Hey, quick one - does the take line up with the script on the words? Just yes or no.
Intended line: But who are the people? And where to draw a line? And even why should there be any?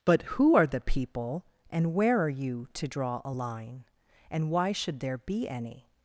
no